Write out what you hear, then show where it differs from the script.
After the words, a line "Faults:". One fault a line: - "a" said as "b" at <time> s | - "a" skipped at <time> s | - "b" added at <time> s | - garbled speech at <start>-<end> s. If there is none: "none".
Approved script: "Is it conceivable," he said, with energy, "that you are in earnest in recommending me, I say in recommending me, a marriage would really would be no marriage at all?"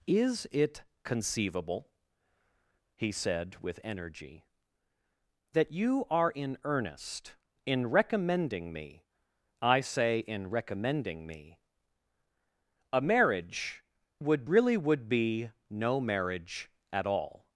"Is it conceivable," he said, with energy, "that you are in earnest in recommending me, I say in recommending me, a marriage would really would be no marriage at all?"
Faults:
none